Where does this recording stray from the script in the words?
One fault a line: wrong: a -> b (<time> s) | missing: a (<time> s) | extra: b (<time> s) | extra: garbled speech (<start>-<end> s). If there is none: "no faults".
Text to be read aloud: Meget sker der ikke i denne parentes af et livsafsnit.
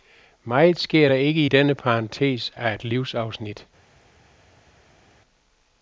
no faults